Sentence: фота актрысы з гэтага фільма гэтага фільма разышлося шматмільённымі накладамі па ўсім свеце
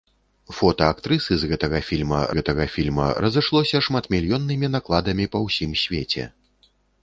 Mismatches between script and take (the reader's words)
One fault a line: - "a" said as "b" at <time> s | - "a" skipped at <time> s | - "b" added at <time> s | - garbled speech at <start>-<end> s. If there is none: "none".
none